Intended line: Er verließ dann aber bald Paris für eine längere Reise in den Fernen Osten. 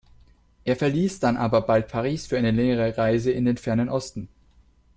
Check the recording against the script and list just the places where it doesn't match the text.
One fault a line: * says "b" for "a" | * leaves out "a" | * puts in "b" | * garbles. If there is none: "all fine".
all fine